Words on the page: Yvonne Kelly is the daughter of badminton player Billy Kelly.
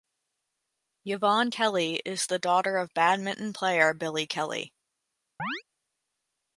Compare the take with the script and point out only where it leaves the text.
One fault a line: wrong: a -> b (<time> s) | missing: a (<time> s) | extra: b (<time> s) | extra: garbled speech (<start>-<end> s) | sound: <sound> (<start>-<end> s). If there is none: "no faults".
sound: chirp (5.4-5.6 s)